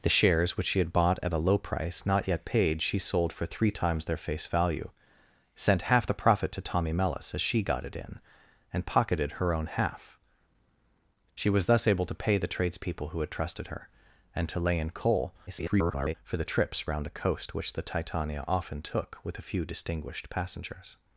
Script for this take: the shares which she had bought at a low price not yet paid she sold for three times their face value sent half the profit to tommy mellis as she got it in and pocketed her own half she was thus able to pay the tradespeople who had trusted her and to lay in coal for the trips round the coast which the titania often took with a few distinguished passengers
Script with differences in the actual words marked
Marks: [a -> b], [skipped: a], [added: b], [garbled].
the shares which she had bought at a low price not yet paid she sold for three times their face value sent half the profit to tommy mellis as she got it in and pocketed her own half she was thus able to pay the tradespeople who had trusted her and to lay in coal [garbled] for the trips round the coast which the titania often took with a few distinguished passengers